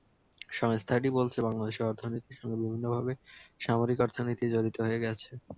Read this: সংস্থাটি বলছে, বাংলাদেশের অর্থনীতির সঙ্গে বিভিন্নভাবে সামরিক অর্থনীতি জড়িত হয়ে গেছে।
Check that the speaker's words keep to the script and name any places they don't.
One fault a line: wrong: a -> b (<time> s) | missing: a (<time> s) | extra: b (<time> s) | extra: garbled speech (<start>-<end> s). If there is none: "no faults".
no faults